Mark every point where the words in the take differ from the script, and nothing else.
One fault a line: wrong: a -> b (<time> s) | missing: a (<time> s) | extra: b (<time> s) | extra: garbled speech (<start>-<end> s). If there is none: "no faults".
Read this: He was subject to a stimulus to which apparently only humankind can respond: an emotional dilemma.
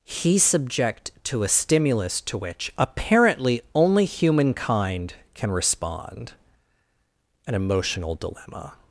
missing: was (0.4 s)